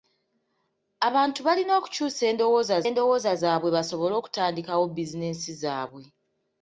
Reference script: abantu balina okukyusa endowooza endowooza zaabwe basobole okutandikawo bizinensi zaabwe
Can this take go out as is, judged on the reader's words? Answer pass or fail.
pass